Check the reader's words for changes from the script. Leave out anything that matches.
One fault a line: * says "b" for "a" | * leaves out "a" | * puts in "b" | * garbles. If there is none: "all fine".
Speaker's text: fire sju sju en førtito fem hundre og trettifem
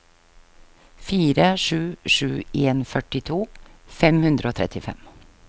all fine